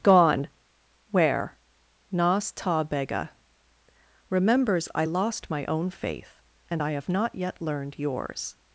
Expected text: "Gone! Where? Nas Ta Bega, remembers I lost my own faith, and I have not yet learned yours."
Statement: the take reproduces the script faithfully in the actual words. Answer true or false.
true